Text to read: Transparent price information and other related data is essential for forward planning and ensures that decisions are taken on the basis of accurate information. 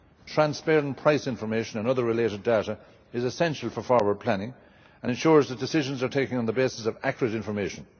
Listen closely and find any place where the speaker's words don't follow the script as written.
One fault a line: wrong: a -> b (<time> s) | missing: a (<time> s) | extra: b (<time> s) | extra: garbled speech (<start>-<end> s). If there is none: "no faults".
no faults